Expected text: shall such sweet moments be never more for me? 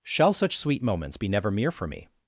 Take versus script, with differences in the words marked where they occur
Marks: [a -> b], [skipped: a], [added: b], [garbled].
shall such sweet moments be never [more -> mere] for me?